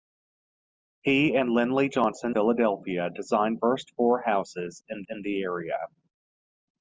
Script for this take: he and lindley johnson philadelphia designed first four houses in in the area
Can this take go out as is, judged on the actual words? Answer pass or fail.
pass